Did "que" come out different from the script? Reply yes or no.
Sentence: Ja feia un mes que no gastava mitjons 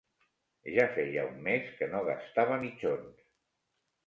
no